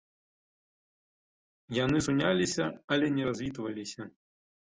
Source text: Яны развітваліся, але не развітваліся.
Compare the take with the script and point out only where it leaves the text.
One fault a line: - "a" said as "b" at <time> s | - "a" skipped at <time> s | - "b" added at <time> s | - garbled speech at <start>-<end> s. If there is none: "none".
- "развітваліся" said as "суняліся" at 2.0 s